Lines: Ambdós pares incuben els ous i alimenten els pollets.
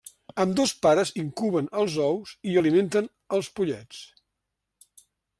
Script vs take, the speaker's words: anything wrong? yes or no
no